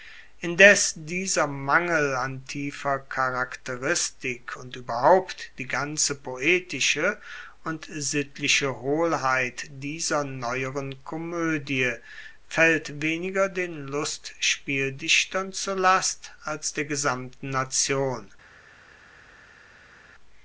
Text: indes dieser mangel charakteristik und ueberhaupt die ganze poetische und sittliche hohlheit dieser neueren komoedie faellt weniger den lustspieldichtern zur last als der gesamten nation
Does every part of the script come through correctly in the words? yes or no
no